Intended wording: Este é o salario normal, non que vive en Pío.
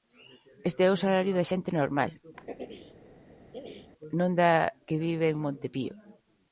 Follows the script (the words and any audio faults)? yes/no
no